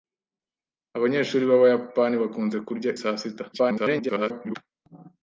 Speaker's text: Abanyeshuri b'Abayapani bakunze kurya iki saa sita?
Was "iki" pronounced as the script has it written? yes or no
no